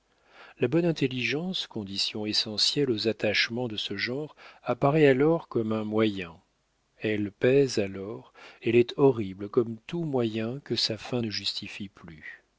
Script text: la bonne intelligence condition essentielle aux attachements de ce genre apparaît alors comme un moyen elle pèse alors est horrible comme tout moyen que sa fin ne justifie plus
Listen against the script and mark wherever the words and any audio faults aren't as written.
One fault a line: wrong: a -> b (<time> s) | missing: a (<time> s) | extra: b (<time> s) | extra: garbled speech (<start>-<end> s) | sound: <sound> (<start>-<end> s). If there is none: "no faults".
extra: elle (8.6 s)